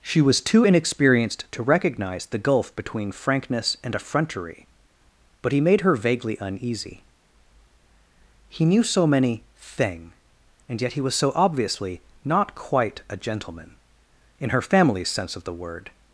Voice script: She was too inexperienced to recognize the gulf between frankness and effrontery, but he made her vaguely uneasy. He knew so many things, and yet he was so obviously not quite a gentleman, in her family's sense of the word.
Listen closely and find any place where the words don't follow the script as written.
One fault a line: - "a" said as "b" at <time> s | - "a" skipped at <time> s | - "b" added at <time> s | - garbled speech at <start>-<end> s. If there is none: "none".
- "things" said as "thing" at 9.6 s